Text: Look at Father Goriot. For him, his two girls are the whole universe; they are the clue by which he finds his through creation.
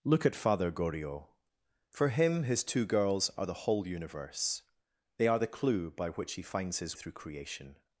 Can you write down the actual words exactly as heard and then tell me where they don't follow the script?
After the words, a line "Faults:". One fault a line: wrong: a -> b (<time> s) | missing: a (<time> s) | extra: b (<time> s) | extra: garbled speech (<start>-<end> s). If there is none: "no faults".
Look at Father Goriot. For him, his two girls are the whole universe; they are the clue by which he finds his through creation.
Faults:
no faults